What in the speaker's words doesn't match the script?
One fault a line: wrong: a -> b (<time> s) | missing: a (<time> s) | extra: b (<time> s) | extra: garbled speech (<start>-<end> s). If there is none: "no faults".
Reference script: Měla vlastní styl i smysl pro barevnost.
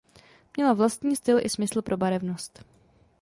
no faults